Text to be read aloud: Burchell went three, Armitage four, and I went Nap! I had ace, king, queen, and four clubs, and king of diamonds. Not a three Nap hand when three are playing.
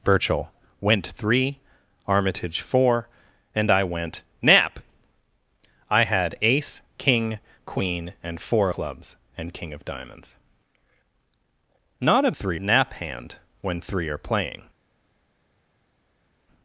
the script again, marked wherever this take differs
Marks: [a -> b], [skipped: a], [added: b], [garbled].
Burchell went three, Armitage four, and I went Nap! I had ace, king, queen, and four clubs, and king of diamonds. Not a three Nap hand when three are playing.